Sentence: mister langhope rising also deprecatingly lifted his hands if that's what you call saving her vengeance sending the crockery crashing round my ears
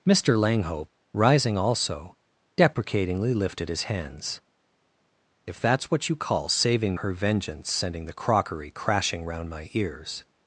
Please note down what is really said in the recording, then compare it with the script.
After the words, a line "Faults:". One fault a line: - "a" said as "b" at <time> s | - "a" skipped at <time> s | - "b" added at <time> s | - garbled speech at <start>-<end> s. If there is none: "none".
mister langhope rising also deprecatingly lifted his hands if that's what you call saving her vengeance sending the crockery crashing round my ears
Faults:
none